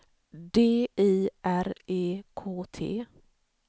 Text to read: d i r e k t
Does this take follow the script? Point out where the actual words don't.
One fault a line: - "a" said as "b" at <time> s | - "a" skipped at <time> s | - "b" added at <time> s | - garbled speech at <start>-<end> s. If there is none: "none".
none